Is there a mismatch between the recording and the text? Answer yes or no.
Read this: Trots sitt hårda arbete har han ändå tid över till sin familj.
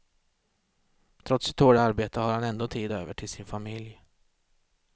no